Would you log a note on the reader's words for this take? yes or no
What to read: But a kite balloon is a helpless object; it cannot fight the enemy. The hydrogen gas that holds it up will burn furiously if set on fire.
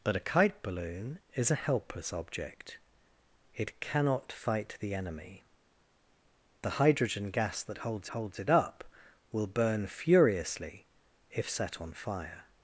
yes